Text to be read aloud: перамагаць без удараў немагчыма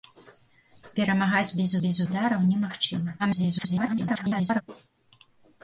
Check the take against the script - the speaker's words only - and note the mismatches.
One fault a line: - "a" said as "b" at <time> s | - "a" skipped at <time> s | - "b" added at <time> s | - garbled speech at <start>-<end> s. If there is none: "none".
- "без" added at 1.8 s
- garbled speech at 3.2-4.6 s